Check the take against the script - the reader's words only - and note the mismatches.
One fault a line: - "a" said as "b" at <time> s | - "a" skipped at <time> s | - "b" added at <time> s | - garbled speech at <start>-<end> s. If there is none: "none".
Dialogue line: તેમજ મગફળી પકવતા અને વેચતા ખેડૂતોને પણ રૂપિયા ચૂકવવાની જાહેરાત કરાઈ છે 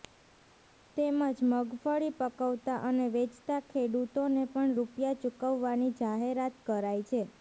none